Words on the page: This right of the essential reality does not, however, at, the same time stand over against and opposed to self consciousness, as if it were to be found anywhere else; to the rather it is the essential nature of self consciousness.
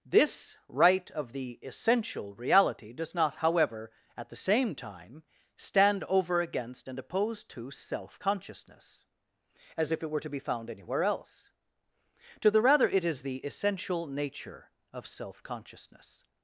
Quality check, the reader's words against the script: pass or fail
pass